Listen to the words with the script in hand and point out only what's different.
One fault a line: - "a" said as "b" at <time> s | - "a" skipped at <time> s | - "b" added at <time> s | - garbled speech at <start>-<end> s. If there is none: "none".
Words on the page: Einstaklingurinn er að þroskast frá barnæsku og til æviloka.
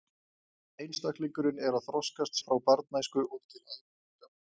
none